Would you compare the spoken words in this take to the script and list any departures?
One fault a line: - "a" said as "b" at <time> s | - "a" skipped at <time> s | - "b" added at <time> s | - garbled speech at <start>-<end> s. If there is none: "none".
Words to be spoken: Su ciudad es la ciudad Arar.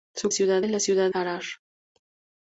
none